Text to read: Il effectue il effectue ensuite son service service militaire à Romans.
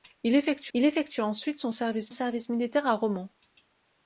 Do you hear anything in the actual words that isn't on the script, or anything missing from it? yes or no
no